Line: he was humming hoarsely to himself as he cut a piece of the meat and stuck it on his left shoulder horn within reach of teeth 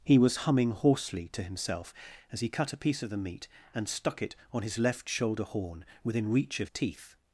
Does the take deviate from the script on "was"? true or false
false